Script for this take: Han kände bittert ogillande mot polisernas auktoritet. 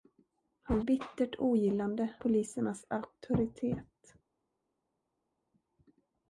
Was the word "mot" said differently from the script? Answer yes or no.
yes